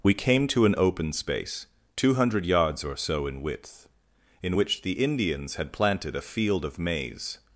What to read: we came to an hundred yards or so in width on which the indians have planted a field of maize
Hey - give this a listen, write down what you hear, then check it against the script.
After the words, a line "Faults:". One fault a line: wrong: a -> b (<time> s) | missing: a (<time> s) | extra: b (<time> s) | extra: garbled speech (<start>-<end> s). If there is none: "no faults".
we came to an open space two hundred yards or so in width in which the indians had planted a field of maize
Faults:
extra: open space two (0.8 s)
wrong: on -> in (4.4 s)
wrong: have -> had (5.5 s)